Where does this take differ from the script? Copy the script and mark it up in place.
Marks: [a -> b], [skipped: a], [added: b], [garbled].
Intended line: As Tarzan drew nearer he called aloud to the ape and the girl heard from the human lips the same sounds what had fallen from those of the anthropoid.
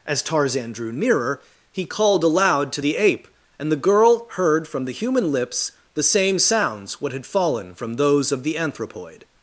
As Tarzan drew nearer he called aloud to the ape and the girl heard from the human lips the same sounds what had fallen from those of the anthropoid.